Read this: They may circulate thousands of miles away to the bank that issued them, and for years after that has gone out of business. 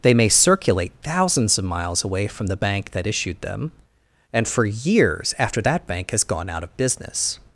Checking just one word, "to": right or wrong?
wrong